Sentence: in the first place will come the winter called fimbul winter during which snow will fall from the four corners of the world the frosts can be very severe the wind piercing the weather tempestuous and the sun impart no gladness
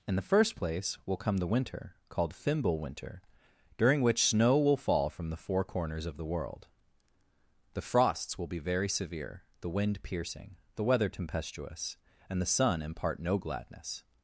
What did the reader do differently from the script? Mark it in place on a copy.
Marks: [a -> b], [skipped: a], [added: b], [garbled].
in the first place will come the winter called fimbul winter during which snow will fall from the four corners of the world the frosts [can -> will] be very severe the wind piercing the weather tempestuous and the sun impart no gladness